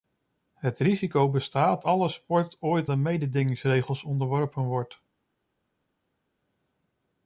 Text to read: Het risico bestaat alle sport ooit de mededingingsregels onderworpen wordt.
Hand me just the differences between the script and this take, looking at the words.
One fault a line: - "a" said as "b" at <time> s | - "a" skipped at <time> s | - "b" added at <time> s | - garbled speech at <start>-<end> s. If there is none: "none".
none